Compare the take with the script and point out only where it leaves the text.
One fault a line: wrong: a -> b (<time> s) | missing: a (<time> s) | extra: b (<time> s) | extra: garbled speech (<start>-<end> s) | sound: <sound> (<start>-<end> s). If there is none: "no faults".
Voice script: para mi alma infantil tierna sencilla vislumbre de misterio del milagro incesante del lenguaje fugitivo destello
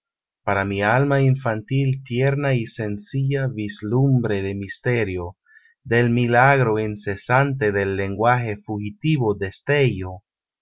extra: y (2.5 s)